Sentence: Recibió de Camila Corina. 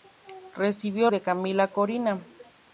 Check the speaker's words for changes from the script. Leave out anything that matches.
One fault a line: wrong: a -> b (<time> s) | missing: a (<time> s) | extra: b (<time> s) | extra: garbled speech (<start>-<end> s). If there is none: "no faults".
no faults